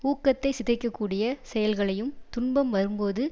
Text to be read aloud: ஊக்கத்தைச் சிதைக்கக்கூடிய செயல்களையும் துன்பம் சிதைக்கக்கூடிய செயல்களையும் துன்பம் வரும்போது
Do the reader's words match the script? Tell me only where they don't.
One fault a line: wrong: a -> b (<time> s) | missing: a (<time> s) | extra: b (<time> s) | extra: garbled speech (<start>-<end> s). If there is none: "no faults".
missing: சிதைக்கக்கூடிய செயல்களையும் துன்பம் (2.7 s)